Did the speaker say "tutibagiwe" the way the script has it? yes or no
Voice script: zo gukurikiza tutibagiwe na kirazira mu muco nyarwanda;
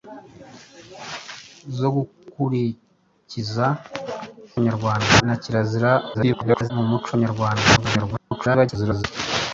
no